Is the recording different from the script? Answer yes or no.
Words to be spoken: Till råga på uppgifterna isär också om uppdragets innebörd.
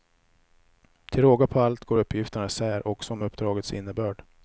yes